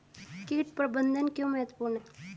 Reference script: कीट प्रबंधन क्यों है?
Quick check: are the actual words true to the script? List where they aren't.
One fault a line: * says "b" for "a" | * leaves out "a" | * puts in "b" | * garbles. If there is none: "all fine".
* puts in "महत्वपूर्ण"